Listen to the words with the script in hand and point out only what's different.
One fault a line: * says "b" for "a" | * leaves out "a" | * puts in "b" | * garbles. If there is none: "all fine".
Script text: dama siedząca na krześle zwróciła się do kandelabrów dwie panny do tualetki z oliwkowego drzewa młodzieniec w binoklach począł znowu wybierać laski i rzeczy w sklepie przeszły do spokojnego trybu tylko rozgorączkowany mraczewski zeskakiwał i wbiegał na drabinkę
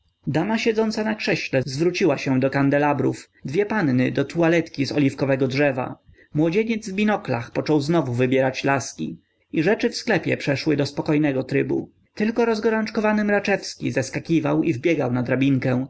all fine